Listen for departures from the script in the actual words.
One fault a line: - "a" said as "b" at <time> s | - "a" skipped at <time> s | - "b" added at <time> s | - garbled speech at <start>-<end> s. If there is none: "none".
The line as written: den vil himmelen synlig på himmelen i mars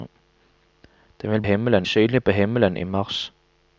none